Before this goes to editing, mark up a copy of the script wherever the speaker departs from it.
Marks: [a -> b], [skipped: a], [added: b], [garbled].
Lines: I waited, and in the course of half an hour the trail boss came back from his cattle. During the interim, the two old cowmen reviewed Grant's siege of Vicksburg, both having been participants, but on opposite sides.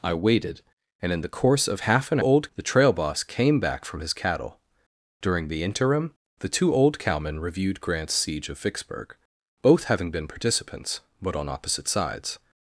I waited, and in the course of half an [hour -> old] the trail boss came back from his cattle. During the interim, the two old cowmen reviewed Grant's siege of Vicksburg, both having been participants, but on opposite sides.